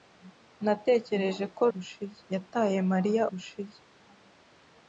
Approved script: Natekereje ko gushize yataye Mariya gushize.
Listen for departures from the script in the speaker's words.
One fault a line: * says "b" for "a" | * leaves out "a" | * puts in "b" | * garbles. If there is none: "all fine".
all fine